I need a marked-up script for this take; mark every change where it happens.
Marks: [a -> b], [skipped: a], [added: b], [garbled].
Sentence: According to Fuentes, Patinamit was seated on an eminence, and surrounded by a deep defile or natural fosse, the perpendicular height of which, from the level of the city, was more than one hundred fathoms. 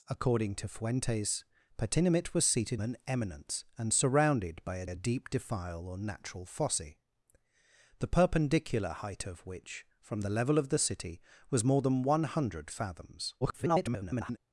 According to Fuentes, Patinamit was seated [skipped: on] an eminence, and surrounded by a [added: a] deep defile or natural fosse, the perpendicular height of which, from the level of the city, was more than one hundred fathoms. [garbled]